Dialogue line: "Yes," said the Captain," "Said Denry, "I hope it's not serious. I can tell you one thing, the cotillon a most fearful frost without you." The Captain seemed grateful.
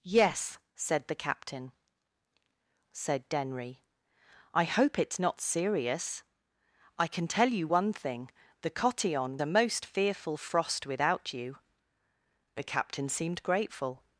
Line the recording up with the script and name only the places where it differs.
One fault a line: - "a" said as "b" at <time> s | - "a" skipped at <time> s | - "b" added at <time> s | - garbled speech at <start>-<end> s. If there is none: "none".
none